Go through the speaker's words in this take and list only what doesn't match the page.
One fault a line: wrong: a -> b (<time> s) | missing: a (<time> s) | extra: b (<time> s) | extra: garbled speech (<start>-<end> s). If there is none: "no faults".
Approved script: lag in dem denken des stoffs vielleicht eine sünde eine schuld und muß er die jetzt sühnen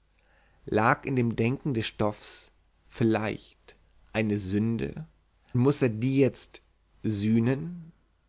missing: eine schuld und (5.1 s)